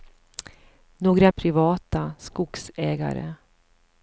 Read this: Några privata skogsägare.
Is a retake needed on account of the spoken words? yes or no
no